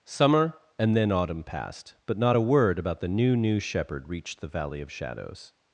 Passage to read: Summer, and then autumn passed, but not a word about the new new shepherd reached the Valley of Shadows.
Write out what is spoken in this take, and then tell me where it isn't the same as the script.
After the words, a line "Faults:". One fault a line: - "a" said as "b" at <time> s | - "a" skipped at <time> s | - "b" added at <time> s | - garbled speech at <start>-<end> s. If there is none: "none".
Summer, and then autumn passed, but not a word about the new new shepherd reached the Valley of Shadows.
Faults:
none